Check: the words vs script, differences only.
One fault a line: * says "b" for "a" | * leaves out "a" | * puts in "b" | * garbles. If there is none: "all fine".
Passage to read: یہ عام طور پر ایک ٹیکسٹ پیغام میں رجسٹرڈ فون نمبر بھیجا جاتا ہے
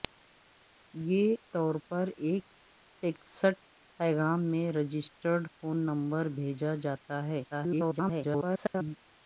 * leaves out "عام"
* garbles